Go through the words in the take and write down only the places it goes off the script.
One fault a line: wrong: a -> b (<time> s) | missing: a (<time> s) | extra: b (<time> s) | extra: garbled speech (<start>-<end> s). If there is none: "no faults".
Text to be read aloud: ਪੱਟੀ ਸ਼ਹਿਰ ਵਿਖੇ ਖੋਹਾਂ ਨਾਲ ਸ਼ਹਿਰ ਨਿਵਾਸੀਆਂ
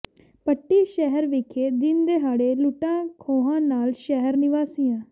extra: ਦਿਨ ਦਿਹਾੜੇ ਲੁੱਟਾਂ (1.7 s)